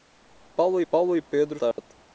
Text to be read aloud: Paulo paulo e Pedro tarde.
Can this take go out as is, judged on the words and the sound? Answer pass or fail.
fail